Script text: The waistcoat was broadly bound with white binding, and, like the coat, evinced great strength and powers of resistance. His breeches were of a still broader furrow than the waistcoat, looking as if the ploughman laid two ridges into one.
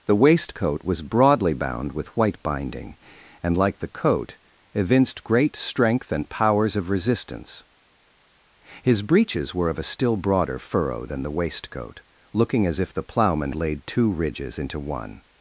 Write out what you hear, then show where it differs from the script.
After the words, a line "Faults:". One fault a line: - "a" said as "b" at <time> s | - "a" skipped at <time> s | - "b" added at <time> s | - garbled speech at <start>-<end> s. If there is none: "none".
The waistcoat was broadly bound with white binding, and, like the coat, evinced great strength and powers of resistance. His breeches were of a still broader furrow than the waistcoat, looking as if the ploughman laid two ridges into one.
Faults:
none